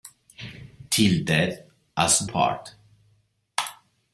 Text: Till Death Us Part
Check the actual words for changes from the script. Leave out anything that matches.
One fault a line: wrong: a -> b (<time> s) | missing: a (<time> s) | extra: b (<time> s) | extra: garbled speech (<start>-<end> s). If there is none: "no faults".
no faults